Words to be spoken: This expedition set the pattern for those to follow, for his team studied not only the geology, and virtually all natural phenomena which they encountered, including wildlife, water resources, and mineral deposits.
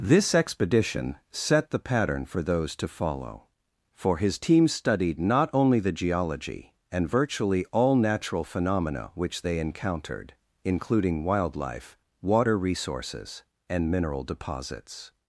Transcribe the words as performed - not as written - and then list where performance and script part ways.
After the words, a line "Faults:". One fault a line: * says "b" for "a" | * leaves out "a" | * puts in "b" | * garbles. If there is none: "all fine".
This expedition set the pattern for those to follow, for his team studied not only the geology, and virtually all natural phenomena which they encountered, including wildlife, water resources, and mineral deposits.
Faults:
all fine